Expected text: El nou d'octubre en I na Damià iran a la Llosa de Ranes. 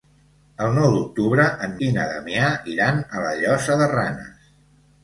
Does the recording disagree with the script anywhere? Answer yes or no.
no